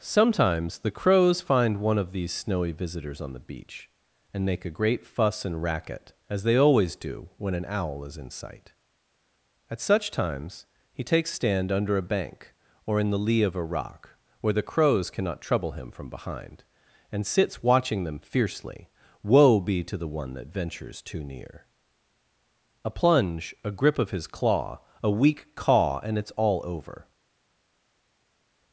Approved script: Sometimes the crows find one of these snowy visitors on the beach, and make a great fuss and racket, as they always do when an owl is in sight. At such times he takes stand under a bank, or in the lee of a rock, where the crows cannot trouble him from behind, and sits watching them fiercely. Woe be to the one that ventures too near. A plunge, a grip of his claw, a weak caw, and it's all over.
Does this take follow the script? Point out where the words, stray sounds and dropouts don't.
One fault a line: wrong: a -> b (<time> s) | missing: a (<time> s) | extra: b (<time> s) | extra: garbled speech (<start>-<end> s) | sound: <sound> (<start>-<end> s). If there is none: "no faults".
no faults